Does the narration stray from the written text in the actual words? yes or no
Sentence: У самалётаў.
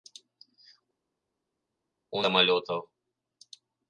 no